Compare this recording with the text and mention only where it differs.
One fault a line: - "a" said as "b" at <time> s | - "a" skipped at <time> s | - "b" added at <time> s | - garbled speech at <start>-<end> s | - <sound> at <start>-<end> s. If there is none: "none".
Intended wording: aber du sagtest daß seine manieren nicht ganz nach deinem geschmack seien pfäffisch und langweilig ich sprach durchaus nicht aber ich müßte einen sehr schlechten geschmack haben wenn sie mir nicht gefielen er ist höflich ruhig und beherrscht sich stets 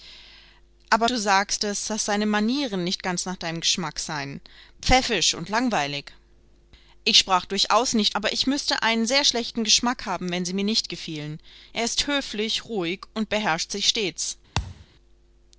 - thud at 14.5-14.9 s